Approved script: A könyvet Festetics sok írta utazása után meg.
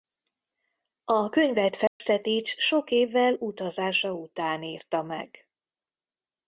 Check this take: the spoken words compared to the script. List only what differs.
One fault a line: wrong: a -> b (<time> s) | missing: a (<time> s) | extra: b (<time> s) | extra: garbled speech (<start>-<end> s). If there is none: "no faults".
wrong: írta -> évvel (2.9 s)
extra: írta (4.6 s)